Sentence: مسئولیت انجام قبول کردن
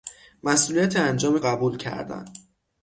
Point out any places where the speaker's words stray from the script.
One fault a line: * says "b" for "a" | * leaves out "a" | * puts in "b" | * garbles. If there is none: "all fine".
all fine